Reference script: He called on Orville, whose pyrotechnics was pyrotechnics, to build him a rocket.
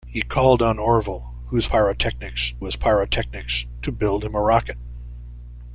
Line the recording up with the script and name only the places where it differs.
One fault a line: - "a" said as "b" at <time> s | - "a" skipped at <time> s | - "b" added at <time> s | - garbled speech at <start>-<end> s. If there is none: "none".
none